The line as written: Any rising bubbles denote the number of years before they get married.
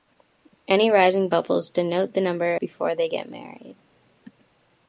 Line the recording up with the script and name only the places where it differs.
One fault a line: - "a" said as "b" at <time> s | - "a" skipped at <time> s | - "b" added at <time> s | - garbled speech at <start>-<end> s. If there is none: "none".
- "of years" skipped at 2.6 s